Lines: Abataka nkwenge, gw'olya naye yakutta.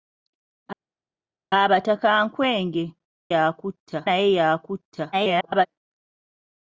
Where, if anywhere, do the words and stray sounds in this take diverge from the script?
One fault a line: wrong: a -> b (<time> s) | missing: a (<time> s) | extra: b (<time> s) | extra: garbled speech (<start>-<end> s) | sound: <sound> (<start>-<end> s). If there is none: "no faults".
wrong: gw'olya -> yakutta (3.3 s)
extra: garbled speech (5.1-5.7 s)